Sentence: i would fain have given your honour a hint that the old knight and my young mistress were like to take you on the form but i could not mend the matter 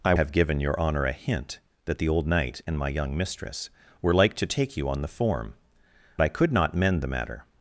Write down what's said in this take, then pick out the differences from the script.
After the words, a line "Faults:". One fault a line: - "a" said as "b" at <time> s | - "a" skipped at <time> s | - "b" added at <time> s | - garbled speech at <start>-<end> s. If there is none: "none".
i have given your honour a hint that the old knight and my young mistress were like to take you on the form i could not mend the matter
Faults:
- "would fain" skipped at 0.1 s
- "but" skipped at 5.5 s